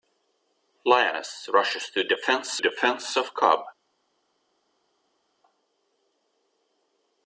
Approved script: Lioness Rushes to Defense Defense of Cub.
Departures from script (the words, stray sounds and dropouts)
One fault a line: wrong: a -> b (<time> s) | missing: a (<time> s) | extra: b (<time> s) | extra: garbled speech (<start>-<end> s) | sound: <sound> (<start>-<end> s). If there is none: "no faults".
no faults